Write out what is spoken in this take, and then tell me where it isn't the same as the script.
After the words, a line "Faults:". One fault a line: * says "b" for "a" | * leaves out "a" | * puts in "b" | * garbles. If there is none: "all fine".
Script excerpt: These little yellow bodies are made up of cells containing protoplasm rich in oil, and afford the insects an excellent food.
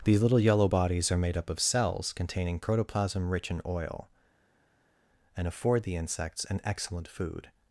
These little yellow bodies are made up of cells containing protoplasm rich in oil, and afford the insects an excellent food.
Faults:
all fine